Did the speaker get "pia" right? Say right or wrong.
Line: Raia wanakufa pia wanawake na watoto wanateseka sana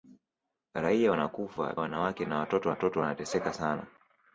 wrong